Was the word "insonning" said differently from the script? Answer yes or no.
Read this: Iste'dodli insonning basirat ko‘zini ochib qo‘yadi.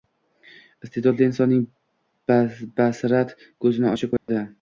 no